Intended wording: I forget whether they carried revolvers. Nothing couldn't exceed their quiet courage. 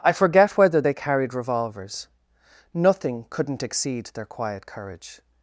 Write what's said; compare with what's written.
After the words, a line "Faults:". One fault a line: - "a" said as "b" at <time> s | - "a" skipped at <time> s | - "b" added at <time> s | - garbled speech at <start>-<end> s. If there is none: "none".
I forget whether they carried revolvers. Nothing couldn't exceed their quiet courage.
Faults:
none